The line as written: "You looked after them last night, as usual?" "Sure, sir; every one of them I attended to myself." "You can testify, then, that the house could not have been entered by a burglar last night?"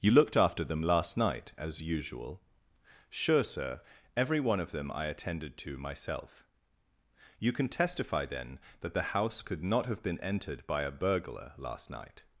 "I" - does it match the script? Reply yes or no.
yes